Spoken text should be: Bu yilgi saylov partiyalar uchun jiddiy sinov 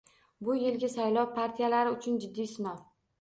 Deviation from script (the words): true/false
false